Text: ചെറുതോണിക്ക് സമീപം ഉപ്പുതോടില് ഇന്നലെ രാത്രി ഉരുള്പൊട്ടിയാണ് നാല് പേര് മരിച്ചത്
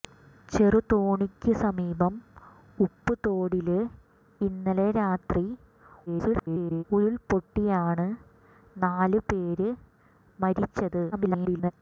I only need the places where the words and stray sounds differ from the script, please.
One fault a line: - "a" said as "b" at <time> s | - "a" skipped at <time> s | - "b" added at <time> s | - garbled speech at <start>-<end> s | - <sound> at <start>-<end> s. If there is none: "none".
- garbled speech at 6.1-6.8 s
- garbled speech at 11.1-11.7 s